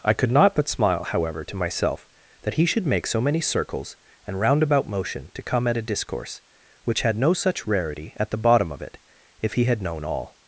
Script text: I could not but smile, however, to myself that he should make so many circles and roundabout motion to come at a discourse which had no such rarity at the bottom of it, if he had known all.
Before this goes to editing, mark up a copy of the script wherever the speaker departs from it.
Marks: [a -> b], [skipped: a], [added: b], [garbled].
I could not but smile, however, to myself that he should make so many circles and roundabout motion to come at a discourse which had no such rarity at the bottom of it, if he had known all.